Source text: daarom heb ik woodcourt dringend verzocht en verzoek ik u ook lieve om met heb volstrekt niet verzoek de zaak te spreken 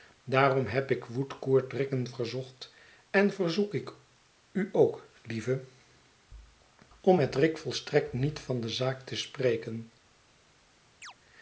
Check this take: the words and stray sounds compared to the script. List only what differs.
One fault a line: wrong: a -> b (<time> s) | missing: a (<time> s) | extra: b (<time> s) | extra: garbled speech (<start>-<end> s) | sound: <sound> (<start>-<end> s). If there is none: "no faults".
wrong: heb -> rick (7.3 s)
wrong: verzoek -> van (8.4 s)
sound: chirp (11.0-11.1 s)